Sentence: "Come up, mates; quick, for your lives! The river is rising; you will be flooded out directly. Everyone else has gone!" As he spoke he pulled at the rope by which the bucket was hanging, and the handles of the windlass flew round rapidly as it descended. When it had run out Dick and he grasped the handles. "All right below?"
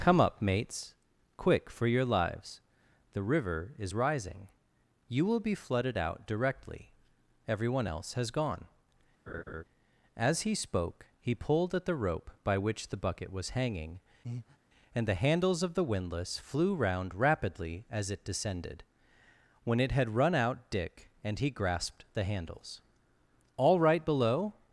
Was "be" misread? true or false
false